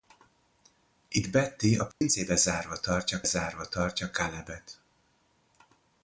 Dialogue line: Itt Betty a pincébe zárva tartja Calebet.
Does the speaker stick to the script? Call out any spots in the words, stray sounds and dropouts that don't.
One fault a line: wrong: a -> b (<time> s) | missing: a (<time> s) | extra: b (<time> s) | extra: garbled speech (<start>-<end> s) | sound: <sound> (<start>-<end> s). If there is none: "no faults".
sound: dropout (1.9-2.0 s)
extra: zárva tartja (3.2 s)